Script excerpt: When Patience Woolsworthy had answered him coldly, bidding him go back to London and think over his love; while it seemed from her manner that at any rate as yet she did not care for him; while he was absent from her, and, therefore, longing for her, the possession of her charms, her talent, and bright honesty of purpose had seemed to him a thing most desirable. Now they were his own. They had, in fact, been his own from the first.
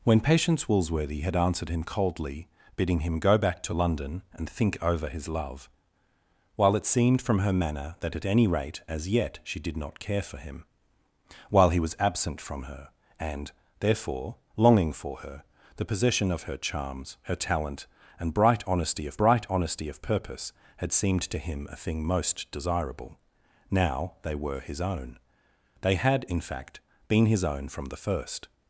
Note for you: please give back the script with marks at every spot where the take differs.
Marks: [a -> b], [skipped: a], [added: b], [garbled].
When Patience Woolsworthy had answered him coldly, bidding him go back to London and think over his love; while it seemed from her manner that at any rate as yet she did not care for him; while he was absent from her, and, therefore, longing for her, the possession of her charms, her talent, and bright honesty of [added: bright honesty of] purpose had seemed to him a thing most desirable. Now they were his own. They had, in fact, been his own from the first.